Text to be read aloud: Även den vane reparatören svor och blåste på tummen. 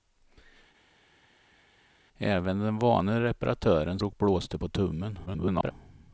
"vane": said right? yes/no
yes